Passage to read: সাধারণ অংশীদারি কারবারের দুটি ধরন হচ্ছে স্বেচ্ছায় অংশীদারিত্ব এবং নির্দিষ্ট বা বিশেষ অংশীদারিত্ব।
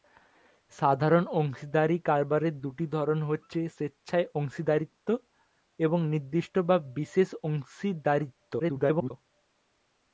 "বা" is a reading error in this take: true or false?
false